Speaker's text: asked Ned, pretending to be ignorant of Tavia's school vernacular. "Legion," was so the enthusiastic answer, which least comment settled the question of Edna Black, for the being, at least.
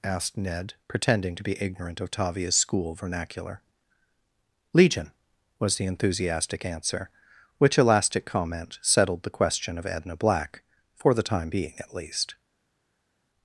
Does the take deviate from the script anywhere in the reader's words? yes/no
yes